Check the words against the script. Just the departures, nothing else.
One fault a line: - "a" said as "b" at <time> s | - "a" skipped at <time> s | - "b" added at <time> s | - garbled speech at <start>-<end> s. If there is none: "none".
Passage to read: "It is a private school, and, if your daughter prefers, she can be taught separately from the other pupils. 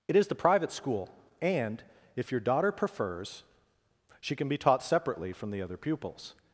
- "a" said as "the" at 0.3 s